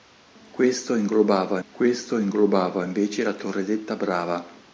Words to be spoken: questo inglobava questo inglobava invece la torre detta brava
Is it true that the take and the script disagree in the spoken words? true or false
false